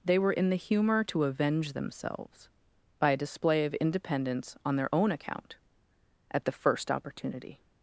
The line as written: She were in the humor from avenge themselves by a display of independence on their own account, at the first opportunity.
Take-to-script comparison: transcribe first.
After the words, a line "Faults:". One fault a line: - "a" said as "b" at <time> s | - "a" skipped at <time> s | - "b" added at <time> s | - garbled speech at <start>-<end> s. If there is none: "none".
They were in the humor to avenge themselves by a display of independence on their own account, at the first opportunity.
Faults:
- "She" said as "They" at 0.0 s
- "from" said as "to" at 1.1 s